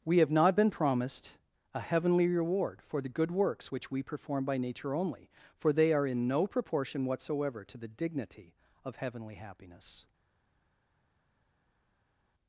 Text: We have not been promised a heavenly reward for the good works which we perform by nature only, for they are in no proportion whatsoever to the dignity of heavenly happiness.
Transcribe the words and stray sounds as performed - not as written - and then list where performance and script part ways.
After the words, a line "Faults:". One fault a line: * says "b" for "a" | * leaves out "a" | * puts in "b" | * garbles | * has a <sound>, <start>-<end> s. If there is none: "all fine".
We have not been promised a heavenly reward for the good works which we perform by nature only, for they are in no proportion whatsoever to the dignity of heavenly happiness.
Faults:
all fine